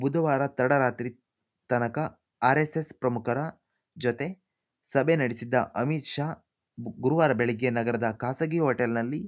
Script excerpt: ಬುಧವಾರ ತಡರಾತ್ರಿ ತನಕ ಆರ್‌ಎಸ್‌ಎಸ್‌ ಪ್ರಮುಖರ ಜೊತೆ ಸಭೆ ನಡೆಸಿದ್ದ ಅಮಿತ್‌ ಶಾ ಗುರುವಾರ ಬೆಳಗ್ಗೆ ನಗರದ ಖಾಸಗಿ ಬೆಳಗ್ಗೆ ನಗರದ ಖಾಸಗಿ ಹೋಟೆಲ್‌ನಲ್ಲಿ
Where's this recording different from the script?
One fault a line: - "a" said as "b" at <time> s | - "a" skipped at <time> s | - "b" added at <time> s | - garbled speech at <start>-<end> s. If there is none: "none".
- "ಬೆಳಗ್ಗೆ ನಗರದ ಖಾಸಗಿ" skipped at 8.6 s